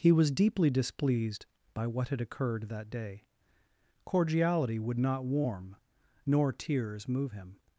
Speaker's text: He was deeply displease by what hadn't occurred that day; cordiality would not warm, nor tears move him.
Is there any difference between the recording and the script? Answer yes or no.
yes